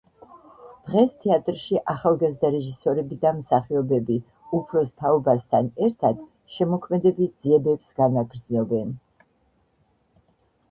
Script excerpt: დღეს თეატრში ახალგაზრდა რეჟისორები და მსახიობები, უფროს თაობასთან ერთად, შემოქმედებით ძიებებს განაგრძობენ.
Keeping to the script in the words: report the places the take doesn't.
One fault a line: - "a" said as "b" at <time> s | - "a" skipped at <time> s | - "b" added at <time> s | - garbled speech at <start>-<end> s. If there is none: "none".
none